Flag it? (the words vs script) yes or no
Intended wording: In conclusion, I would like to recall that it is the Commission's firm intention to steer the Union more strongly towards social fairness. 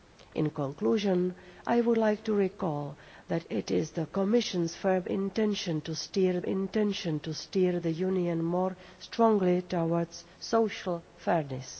yes